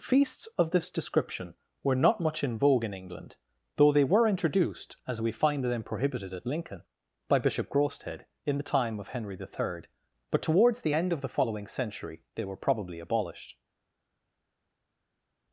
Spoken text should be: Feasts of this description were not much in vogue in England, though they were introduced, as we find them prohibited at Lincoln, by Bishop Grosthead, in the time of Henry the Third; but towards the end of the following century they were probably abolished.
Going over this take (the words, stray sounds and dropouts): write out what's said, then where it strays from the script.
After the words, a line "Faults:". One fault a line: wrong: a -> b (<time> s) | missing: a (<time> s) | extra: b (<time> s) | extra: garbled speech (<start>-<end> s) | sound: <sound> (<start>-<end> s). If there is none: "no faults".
Feasts of this description were not much in vogue in England, though they were introduced, as we find them prohibited at Lincoln, by Bishop Grosthead, in the time of Henry the Third; but towards the end of the following century they were probably abolished.
Faults:
no faults